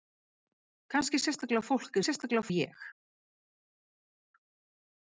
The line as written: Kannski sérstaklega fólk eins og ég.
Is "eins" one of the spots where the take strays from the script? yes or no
yes